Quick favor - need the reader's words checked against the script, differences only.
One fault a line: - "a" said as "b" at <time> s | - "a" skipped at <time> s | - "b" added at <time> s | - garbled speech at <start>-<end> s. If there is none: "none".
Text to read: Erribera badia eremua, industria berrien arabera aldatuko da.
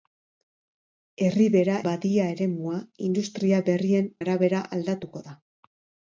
none